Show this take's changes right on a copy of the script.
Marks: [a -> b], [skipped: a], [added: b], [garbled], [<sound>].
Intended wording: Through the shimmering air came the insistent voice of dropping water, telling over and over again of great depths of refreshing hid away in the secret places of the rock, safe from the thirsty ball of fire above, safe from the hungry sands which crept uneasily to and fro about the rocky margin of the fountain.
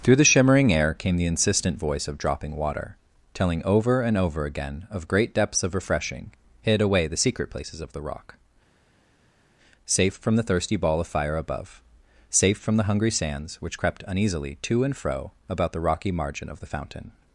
Through the shimmering air came the insistent voice of dropping water, telling over and over again of great depths of refreshing hid away [skipped: in] the secret places of the rock, safe from the thirsty ball of fire above, safe from the hungry sands which crept uneasily to and fro about the rocky margin of the fountain.